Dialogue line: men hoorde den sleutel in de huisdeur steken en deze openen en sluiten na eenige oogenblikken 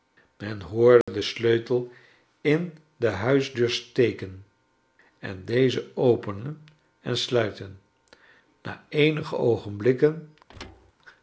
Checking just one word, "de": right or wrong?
right